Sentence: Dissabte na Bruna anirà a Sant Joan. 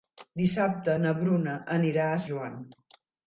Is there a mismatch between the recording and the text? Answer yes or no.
yes